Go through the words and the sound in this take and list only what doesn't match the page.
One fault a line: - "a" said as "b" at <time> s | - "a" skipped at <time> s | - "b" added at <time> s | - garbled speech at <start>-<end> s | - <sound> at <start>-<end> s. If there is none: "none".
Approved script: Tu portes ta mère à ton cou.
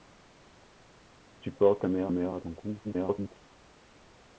- "mère" added at 2.1 s
- garbled speech at 2.8-3.3 s